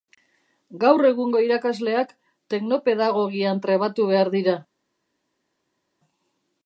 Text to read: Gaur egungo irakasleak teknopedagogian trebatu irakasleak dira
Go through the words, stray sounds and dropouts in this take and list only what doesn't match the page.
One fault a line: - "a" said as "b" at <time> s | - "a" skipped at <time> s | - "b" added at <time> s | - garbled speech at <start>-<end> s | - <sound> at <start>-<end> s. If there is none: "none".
- "irakasleak" said as "behar" at 4.2 s